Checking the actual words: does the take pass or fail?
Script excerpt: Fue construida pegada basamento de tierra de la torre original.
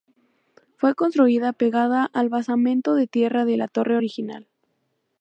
fail